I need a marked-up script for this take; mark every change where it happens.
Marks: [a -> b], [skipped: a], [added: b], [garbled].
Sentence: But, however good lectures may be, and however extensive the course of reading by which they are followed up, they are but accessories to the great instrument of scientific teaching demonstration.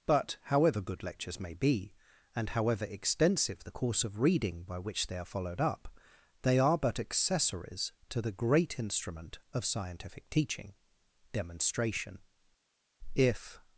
But, however good lectures may be, and however extensive the course of reading by which they are followed up, they are but accessories to the great instrument of scientific teaching demonstration. [added: If]